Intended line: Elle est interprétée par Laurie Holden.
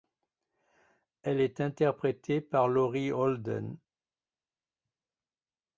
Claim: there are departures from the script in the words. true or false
false